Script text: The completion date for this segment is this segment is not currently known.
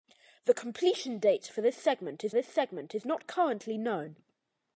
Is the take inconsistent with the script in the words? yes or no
no